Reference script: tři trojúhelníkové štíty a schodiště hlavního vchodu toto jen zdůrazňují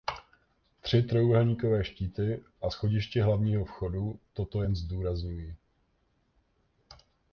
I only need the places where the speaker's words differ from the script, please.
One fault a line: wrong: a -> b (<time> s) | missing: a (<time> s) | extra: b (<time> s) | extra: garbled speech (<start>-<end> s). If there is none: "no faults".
no faults